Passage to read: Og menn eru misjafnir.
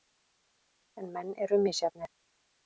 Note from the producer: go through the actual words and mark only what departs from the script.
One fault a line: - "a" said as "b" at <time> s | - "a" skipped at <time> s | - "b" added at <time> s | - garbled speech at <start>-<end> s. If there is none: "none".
- "Og" said as "En" at 1.0 s